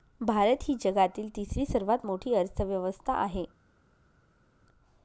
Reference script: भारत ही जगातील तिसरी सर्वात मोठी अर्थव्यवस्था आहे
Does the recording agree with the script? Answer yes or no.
yes